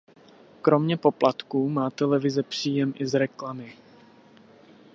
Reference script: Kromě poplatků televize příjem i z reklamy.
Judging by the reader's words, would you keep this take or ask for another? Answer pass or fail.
fail